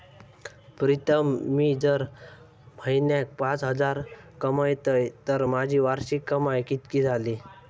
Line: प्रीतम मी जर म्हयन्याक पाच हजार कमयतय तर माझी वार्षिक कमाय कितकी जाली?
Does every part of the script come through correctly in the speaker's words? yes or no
yes